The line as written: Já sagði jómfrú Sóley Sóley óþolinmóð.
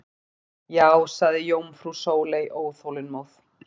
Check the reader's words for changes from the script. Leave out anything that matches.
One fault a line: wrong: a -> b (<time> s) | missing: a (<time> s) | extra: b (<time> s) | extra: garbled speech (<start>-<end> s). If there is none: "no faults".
missing: Sóley (2.5 s)